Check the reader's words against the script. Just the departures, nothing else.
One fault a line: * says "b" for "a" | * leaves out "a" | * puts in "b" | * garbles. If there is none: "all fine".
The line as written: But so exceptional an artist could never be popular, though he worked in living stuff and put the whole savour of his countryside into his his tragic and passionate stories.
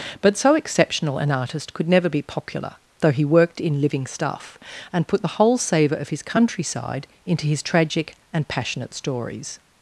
* leaves out "his"